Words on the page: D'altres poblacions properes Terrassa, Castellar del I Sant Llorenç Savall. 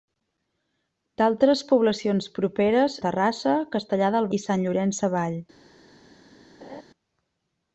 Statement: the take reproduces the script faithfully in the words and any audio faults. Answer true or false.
false